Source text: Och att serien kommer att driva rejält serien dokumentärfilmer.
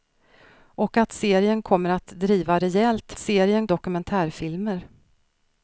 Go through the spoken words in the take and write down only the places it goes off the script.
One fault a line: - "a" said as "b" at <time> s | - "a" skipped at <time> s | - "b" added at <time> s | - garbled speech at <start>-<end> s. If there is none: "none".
none